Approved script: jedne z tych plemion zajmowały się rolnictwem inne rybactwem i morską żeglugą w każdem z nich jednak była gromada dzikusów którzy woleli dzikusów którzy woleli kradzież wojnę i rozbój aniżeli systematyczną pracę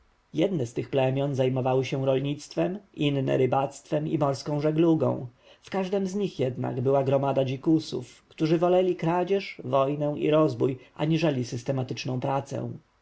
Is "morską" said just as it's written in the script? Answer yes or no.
yes